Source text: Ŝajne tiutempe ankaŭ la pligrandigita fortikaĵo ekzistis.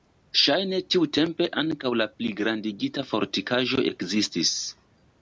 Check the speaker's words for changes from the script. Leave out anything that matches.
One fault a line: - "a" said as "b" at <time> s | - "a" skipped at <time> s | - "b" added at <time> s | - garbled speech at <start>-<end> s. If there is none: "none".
none